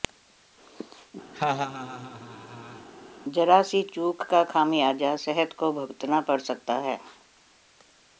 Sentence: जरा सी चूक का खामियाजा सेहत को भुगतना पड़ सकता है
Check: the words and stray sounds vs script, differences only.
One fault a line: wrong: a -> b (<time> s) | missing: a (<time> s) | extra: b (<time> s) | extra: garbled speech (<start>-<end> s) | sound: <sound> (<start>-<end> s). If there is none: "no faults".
sound: laugh (1.3-2.9 s)